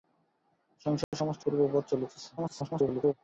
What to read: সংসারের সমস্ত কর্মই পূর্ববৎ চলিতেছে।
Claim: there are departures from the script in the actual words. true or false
true